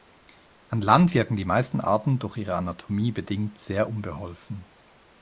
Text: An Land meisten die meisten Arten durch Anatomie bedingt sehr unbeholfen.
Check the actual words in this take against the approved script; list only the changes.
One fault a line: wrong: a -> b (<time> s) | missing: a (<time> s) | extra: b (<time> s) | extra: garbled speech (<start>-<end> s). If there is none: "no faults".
wrong: meisten -> wirken (1.1 s)
extra: ihre (2.4 s)